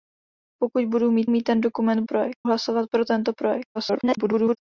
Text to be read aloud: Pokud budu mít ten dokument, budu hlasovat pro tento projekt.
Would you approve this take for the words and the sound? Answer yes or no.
no